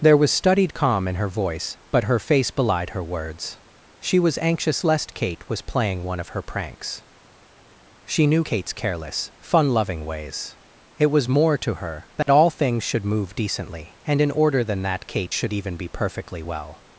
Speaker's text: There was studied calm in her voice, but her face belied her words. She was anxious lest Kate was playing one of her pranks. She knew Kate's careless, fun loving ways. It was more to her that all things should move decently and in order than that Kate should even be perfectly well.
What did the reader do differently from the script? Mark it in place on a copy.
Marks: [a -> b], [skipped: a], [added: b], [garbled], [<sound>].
There was studied calm in her voice, but her face belied her words. She was anxious lest Kate was playing one of her pranks. She knew Kate's careless, fun loving ways. It was more to her that [dropout] all things should move decently and in order than that Kate should even be perfectly well.